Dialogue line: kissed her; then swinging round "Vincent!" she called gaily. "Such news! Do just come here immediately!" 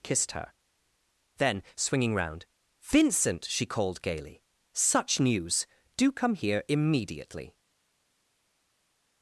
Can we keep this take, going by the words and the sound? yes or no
no